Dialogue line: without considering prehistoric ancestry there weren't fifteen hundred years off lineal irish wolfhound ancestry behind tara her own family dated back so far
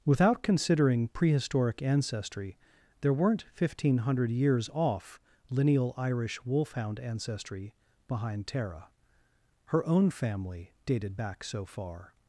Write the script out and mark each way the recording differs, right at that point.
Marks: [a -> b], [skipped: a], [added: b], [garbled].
without considering prehistoric ancestry there weren't fifteen hundred years off lineal irish wolfhound ancestry behind tara her own family dated back so far